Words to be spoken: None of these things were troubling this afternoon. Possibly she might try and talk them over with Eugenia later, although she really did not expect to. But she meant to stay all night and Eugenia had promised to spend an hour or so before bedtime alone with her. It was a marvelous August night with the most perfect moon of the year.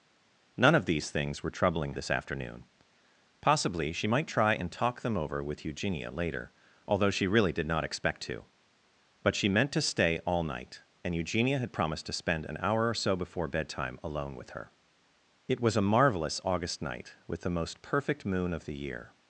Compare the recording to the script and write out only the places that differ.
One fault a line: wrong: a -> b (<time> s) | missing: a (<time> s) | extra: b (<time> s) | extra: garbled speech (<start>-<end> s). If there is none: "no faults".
no faults